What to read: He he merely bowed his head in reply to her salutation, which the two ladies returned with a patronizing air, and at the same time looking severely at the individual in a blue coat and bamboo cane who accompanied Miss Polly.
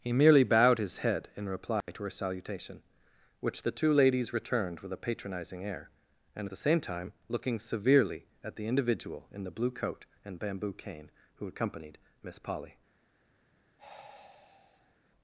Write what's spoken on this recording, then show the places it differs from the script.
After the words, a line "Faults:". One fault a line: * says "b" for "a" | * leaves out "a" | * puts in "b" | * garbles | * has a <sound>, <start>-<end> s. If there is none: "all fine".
He merely bowed his head in reply to her salutation, which the two ladies returned with a patronizing air, and at the same time looking severely at the individual in the blue coat and bamboo cane who accompanied Miss Polly.
Faults:
* leaves out "he"
* has a dropout, 1.8-1.9 s
* says "the" for "a"
* has a sigh, 13.8-15.0 s